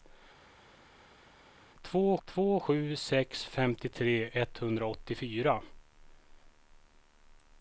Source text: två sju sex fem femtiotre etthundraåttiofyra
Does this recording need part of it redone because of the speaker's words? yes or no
yes